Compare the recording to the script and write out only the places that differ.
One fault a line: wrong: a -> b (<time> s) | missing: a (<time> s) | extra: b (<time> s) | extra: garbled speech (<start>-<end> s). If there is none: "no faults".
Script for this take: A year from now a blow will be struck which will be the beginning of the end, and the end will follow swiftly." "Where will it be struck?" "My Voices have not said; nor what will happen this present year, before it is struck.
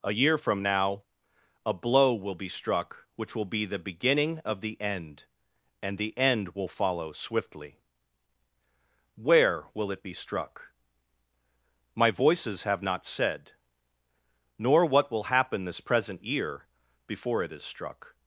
no faults